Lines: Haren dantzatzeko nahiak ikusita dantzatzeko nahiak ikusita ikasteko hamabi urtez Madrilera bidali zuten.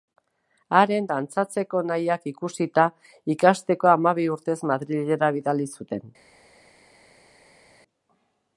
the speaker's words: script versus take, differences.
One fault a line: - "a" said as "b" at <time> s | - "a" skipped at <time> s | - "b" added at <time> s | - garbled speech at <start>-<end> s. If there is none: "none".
- "dantzatzeko nahiak ikusita" skipped at 2.9 s